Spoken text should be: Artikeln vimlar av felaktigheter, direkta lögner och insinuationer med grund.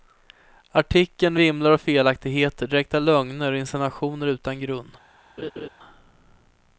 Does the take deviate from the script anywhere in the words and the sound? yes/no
yes